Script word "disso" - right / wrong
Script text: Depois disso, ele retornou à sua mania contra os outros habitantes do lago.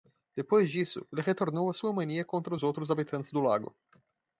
right